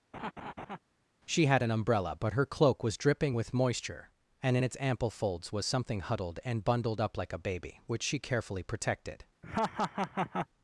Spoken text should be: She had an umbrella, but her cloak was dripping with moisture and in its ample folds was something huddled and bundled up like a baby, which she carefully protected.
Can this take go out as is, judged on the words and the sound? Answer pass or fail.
fail